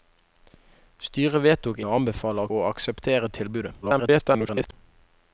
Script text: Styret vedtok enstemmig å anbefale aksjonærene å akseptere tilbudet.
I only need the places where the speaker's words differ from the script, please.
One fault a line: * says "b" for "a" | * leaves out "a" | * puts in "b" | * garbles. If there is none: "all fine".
* leaves out "enstemmig"
* leaves out "aksjonærene"
* garbles